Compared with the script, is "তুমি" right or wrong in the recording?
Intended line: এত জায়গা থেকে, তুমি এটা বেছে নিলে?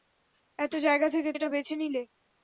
wrong